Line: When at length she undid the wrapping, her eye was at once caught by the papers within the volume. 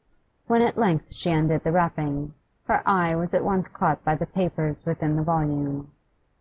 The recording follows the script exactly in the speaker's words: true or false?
true